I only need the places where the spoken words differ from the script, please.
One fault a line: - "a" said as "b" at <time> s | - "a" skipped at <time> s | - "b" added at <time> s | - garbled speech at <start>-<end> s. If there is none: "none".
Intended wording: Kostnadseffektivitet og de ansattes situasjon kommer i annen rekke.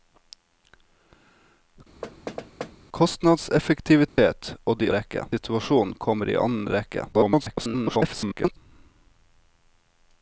- "ansattes" said as "rekke" at 5.0 s
- garbled speech at 7.1-8.6 s